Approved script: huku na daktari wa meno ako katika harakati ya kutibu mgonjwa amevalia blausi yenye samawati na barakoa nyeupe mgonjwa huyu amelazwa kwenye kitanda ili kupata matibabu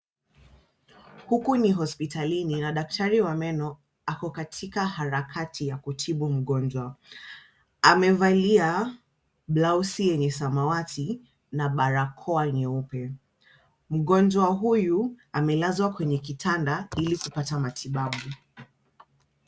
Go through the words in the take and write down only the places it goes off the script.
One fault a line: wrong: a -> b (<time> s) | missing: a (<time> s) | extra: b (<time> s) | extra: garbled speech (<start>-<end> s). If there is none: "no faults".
extra: ni hospitalini (1.6 s)